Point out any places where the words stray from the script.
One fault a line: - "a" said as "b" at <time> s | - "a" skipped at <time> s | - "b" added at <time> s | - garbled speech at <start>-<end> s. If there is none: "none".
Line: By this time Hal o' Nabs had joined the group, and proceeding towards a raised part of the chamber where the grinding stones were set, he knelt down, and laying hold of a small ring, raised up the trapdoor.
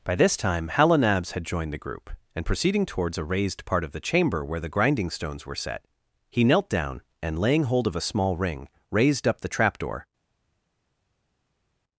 none